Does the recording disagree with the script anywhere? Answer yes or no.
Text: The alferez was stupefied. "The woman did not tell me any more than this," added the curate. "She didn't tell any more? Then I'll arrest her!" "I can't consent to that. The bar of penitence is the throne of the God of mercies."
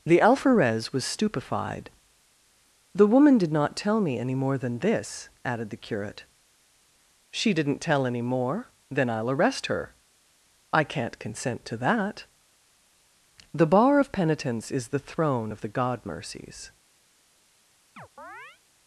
yes